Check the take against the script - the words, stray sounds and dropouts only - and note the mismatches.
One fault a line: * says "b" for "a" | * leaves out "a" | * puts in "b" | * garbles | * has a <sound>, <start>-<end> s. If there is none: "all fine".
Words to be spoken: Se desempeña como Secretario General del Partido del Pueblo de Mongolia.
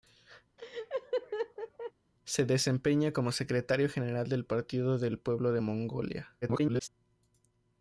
* has a laugh, 0.6-1.9 s
* garbles